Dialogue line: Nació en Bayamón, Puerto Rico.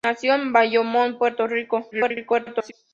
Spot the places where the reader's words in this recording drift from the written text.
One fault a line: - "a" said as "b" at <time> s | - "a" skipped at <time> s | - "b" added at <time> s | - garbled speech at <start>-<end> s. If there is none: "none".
- garbled speech at 1.9-2.7 s